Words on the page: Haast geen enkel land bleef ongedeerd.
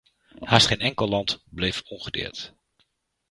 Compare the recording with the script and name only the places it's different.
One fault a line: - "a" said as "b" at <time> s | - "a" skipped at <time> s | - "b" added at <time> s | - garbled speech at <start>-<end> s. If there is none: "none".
none